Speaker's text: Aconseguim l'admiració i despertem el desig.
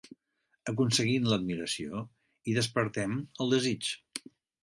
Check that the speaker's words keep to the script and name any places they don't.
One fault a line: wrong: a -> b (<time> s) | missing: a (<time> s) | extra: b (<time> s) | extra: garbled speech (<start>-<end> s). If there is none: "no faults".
no faults